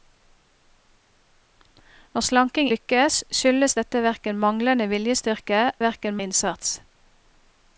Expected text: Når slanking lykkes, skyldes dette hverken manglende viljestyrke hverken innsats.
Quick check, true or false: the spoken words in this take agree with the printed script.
true